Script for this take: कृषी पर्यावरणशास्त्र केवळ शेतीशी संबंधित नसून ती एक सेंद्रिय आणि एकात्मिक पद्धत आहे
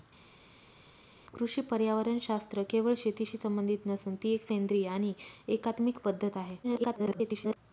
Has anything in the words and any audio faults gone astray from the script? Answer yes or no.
yes